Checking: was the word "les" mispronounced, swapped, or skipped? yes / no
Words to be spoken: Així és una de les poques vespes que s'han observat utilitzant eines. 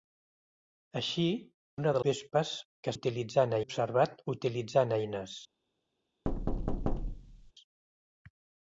yes